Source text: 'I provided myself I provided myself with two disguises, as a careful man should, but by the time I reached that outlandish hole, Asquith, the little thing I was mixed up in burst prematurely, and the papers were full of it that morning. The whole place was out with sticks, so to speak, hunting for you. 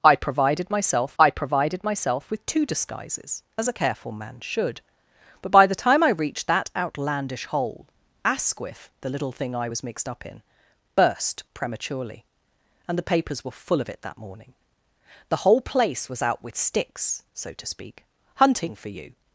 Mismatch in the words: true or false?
false